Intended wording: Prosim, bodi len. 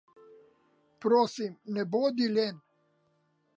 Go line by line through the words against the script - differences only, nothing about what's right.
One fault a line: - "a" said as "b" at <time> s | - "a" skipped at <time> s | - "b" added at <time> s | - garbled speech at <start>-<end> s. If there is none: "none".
- "ne" added at 1.7 s